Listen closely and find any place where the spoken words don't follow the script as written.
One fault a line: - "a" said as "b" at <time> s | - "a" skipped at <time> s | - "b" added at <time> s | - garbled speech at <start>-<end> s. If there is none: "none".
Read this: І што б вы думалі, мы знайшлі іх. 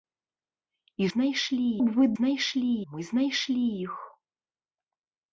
- "што" said as "знайшлі" at 1.1 s
- "думалі" said as "знайшлі" at 2.2 s